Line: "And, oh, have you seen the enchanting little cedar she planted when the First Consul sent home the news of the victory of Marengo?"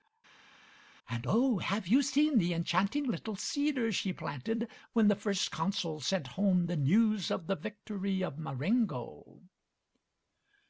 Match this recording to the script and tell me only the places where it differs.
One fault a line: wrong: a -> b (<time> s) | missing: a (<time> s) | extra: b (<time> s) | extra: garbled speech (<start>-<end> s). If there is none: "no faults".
no faults